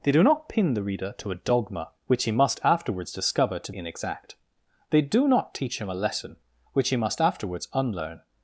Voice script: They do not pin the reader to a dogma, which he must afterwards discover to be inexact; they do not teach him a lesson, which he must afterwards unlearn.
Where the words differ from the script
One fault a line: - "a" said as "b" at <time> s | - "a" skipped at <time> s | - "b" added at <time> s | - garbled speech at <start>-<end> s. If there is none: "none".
- "be" skipped at 3.7 s